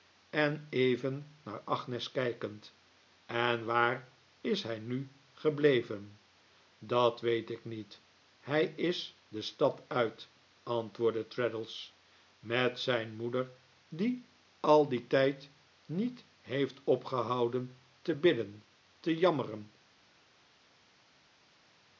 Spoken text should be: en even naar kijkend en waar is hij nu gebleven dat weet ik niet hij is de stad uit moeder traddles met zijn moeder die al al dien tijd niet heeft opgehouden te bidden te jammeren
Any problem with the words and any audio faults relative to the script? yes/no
yes